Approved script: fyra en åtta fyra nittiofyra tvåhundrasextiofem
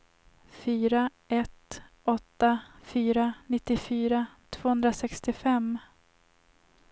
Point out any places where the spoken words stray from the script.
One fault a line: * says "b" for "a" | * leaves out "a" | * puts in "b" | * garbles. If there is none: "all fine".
* says "ett" for "en"